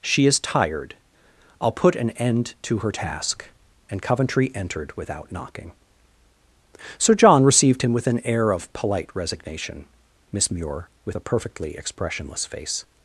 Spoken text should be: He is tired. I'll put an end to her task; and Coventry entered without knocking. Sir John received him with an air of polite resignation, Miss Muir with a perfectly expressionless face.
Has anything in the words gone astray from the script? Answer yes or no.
yes